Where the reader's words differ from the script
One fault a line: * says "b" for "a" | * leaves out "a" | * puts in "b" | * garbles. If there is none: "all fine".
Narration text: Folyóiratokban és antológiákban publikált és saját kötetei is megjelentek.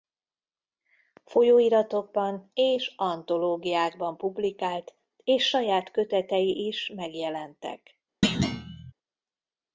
all fine